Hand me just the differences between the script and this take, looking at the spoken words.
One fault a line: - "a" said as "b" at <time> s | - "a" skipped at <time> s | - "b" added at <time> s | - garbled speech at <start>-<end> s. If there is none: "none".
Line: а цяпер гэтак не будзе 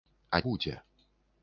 - "цяпер гэтак не" skipped at 0.4 s